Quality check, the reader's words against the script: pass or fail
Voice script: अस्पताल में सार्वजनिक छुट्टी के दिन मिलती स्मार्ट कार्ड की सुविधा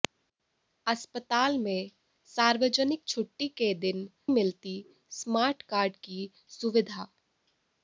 pass